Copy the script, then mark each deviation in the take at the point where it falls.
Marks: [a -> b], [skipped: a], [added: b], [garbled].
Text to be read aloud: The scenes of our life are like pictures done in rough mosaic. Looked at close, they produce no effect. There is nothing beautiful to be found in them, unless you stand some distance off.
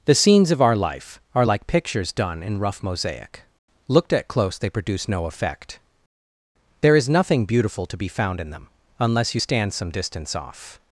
The scenes of our life are like pictures done in rough mosaic. Looked at close, they produce no effect. There is nothing beautiful to be found in them, unless you stand some distance off.